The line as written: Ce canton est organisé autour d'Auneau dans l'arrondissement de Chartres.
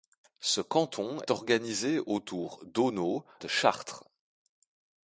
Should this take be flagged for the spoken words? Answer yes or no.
yes